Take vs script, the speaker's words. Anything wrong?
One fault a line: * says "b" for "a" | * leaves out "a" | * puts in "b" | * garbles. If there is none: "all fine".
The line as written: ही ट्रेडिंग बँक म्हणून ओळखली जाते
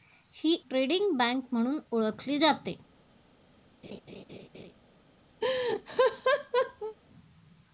all fine